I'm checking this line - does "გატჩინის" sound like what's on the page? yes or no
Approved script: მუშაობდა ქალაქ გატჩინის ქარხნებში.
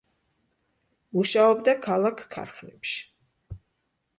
no